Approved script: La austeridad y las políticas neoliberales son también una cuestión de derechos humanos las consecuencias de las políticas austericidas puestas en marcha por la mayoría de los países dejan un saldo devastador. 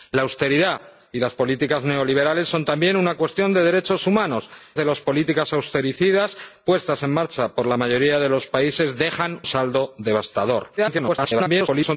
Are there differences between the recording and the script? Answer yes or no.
yes